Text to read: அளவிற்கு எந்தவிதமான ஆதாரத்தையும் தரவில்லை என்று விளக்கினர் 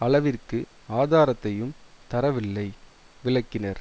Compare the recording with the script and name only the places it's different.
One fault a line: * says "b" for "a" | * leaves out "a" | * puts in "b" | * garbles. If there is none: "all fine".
* leaves out "எந்தவிதமான"
* leaves out "என்று"